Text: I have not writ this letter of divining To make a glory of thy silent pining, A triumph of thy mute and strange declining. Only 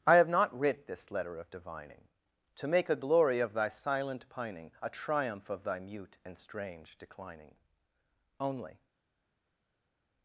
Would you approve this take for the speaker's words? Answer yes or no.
yes